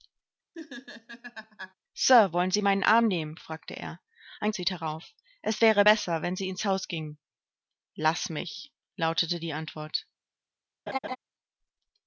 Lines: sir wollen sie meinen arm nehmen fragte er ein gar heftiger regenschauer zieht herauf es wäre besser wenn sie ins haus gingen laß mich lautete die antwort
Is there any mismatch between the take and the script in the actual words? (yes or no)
yes